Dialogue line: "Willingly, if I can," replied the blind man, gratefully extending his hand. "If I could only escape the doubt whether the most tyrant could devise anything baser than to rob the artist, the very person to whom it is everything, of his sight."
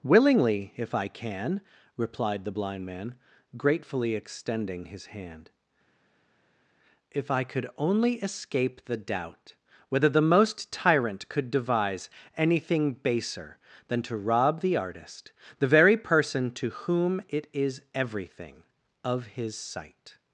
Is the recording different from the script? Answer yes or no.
no